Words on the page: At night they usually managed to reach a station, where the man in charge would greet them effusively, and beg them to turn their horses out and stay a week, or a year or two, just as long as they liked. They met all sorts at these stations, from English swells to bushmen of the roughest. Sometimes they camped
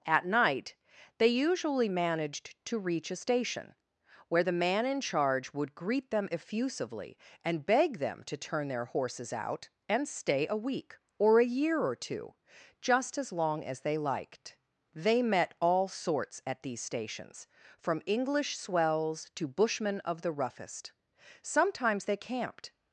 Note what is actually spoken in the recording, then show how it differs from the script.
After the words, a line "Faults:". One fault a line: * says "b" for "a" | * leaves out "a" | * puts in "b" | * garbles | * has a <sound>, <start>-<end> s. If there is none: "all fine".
At night they usually managed to reach a station, where the man in charge would greet them effusively, and beg them to turn their horses out and stay a week, or a year or two, just as long as they liked. They met all sorts at these stations, from English swells to bushmen of the roughest. Sometimes they camped
Faults:
all fine